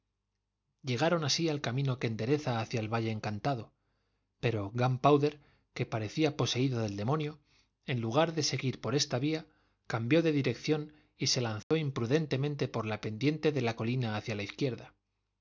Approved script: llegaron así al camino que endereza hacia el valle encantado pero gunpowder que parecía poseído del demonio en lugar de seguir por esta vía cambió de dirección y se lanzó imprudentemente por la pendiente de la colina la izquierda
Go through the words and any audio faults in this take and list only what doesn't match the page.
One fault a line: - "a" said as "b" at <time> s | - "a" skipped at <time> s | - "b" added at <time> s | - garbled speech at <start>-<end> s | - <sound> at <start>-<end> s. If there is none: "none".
- dropout at 11.6-11.7 s
- "hacia" added at 14.1 s